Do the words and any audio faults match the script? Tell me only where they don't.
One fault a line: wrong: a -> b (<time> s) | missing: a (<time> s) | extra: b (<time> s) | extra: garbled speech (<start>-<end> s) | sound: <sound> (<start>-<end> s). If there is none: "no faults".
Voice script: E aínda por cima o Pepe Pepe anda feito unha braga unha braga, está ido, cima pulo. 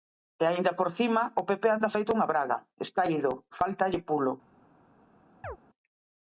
missing: Pepe (1.7 s)
missing: unha braga (2.6 s)
wrong: cima -> fáltalle (3.6 s)
sound: chirp (5.4-5.6 s)